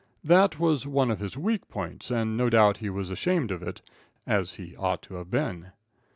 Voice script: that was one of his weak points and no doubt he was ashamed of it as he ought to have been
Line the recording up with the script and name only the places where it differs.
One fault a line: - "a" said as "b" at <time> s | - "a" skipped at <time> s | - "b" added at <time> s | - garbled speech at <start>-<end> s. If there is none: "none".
none